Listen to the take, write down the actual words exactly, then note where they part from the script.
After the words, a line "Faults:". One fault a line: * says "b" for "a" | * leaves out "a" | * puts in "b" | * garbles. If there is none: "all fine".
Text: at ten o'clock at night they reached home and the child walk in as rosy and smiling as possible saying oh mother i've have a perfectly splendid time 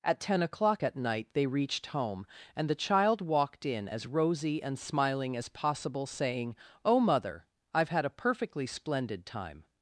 at ten o'clock at night they reached home and the child walked in as rosy and smiling as possible saying oh mother i've had a perfectly splendid time
Faults:
* says "walked" for "walk"
* says "had" for "have"